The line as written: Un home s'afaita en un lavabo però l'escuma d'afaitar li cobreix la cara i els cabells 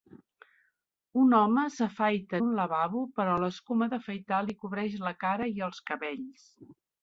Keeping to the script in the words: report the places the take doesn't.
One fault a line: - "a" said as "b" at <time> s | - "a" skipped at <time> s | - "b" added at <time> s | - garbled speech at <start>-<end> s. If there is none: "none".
- "en" skipped at 2.4 s